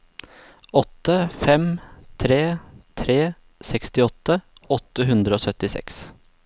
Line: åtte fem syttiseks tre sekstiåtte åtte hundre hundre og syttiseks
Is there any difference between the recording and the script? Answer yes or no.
yes